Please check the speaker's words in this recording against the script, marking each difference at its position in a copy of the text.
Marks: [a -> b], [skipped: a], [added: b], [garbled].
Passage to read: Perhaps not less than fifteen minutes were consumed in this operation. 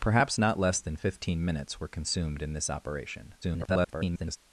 Perhaps not less than fifteen minutes were consumed in this operation. [garbled]